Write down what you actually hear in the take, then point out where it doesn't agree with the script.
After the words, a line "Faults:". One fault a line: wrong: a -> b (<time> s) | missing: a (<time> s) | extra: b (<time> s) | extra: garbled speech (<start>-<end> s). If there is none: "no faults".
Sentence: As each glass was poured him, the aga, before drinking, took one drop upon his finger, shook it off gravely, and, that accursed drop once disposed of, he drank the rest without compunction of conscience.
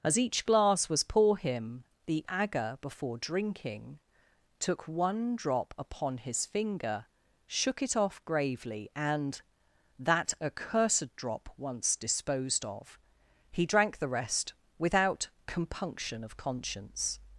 As each glass was pour him, the aga, before drinking, took one drop upon his finger, shook it off gravely, and, that accursed drop once disposed of, he drank the rest without compunction of conscience.
Faults:
wrong: poured -> pour (1.0 s)